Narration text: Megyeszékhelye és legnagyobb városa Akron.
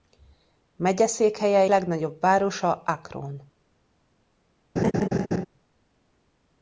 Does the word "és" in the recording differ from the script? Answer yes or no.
yes